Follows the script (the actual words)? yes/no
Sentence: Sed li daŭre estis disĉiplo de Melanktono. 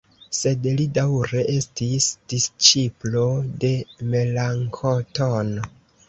yes